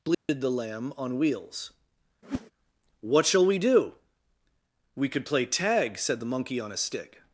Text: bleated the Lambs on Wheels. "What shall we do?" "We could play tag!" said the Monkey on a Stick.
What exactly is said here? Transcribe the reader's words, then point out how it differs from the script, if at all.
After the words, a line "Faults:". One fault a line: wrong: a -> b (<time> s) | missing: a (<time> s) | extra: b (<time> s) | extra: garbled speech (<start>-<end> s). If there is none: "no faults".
bleated the Lamb on Wheels. "What shall we do?" "We could play tag!" said the Monkey on a Stick.
Faults:
wrong: Lambs -> Lamb (0.5 s)